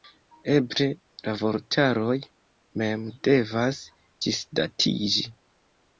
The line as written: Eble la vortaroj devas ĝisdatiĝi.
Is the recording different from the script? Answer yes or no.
yes